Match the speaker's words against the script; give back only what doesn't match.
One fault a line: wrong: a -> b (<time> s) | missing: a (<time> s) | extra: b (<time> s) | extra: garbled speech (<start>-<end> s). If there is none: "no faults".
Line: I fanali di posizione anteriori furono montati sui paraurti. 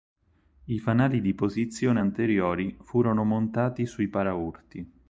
no faults